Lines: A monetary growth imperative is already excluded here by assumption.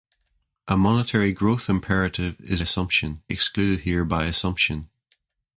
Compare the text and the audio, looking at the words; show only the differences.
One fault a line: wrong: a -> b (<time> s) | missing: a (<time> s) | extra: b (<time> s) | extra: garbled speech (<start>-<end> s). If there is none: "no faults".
wrong: already -> assumption (2.6 s)